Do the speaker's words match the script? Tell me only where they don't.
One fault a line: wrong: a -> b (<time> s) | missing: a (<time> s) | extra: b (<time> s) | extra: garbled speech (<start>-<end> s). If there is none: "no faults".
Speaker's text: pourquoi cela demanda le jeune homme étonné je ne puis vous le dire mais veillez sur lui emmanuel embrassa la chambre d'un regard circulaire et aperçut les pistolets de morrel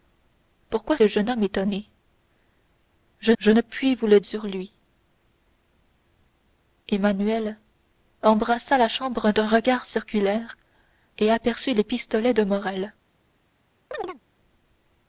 missing: cela demanda (1.0 s)
extra: je (3.4 s)
missing: dire mais veillez (4.2 s)